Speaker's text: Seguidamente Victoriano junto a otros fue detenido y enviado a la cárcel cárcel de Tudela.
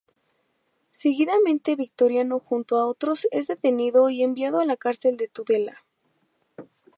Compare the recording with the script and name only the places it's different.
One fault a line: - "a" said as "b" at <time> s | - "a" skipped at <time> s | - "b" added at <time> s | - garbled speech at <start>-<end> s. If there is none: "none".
- "fue" said as "es" at 3.3 s
- "cárcel" skipped at 5.2 s